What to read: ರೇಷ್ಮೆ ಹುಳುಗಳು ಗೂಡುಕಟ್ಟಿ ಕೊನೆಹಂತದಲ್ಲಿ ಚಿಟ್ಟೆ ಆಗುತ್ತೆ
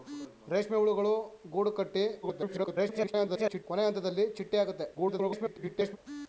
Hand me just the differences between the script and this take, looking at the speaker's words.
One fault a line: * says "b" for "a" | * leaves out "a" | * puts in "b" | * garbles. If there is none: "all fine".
* garbles
* garbles